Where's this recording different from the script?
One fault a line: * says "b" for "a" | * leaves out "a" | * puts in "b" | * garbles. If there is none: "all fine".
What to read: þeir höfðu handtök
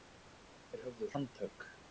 all fine